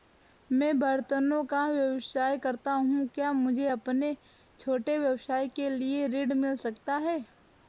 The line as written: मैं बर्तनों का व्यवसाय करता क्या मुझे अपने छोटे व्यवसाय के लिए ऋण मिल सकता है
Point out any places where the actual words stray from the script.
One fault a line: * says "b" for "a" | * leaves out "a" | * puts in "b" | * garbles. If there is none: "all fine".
* puts in "हूँ"